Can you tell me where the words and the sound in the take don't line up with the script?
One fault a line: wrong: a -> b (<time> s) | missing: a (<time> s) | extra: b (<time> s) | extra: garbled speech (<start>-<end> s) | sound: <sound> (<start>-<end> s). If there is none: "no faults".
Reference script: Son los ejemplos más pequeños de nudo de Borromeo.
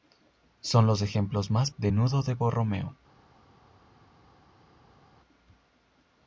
missing: pequeños (1.7 s)